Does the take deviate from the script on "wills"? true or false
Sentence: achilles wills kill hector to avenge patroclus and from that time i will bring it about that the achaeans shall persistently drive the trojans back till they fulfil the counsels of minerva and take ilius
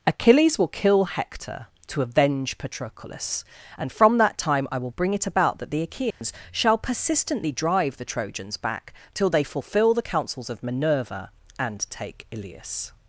true